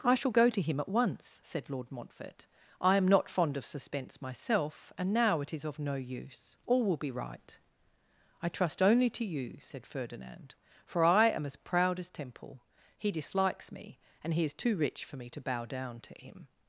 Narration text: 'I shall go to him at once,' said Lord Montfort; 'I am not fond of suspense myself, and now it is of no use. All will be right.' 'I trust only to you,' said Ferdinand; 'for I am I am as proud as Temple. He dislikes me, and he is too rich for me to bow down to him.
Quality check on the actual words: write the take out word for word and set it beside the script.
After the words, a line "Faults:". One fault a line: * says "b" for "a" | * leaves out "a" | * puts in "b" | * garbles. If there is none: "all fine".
'I shall go to him at once,' said Lord Montfort; 'I am not fond of suspense myself, and now it is of no use. All will be right.' 'I trust only to you,' said Ferdinand; 'for I am as proud as Temple. He dislikes me, and he is too rich for me to bow down to him.
Faults:
* leaves out "I am"